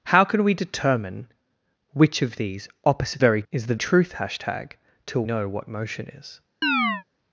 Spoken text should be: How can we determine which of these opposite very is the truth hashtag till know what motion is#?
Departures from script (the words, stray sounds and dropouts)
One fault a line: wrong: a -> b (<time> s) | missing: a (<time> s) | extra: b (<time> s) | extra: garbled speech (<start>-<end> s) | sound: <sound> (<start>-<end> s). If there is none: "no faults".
sound: chirp (6.6-7.0 s)